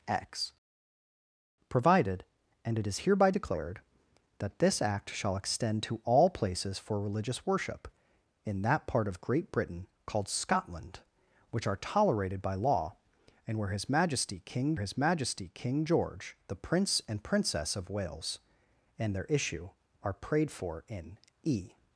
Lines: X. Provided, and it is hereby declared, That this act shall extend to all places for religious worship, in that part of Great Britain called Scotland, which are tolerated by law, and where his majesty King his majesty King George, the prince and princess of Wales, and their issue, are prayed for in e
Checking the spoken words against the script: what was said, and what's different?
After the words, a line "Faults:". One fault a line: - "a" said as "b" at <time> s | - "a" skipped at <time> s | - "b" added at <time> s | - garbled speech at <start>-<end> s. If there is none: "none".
X. Provided, and it is hereby declared, That this act shall extend to all places for religious worship, in that part of Great Britain called Scotland, which are tolerated by law, and where his majesty King his majesty King George, the prince and princess of Wales, and their issue, are prayed for in e
Faults:
none